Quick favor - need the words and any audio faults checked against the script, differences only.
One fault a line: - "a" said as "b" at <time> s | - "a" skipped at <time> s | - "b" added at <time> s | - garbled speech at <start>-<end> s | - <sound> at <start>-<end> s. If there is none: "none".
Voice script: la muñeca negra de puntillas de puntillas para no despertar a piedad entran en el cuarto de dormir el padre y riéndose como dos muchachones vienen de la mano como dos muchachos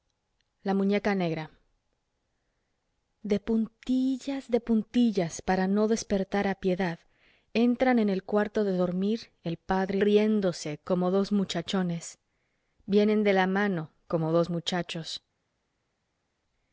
none